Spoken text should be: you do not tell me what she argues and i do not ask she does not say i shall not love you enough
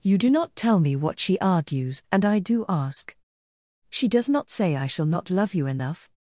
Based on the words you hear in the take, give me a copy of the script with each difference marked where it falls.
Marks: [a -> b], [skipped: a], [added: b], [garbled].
you do not tell me what she argues and i do [skipped: not] ask she does not say i shall not love you enough